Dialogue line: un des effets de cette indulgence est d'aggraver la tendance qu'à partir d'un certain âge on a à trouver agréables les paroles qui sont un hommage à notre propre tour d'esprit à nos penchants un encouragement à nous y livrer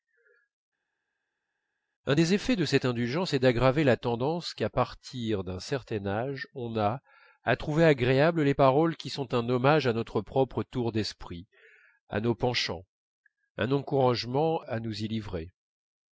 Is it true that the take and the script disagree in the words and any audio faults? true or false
false